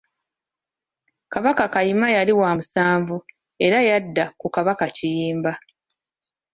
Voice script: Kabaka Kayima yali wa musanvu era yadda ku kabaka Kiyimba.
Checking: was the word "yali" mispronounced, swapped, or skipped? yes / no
no